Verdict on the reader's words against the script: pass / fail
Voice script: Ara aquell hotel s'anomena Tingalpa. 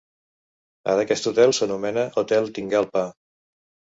fail